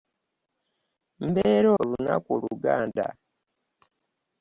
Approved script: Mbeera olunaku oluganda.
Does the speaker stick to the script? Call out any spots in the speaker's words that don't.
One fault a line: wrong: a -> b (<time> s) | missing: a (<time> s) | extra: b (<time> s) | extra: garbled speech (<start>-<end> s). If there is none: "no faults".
no faults